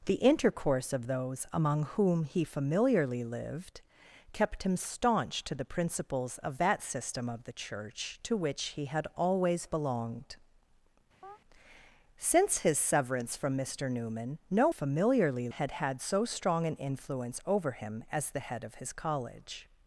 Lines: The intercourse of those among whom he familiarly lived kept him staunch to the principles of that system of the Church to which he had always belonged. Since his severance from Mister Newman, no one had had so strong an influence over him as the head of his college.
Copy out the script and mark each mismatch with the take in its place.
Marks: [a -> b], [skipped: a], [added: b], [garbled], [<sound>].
The intercourse of those among whom he familiarly lived kept him staunch to the principles of that system of the Church to which he had always belonged. [chirp] Since his severance from Mister Newman, no [one -> familiarly] had had so strong an influence over him as the head of his college.